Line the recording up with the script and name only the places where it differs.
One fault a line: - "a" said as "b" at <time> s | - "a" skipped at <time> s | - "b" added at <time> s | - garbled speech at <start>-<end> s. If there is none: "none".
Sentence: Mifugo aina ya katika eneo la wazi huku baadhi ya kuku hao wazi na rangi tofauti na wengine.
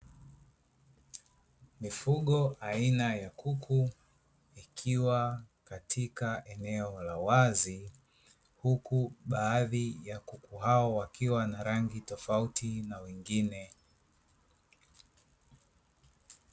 - "kuku ikiwa" added at 3.3 s
- "wazi" said as "wakiwa" at 10.9 s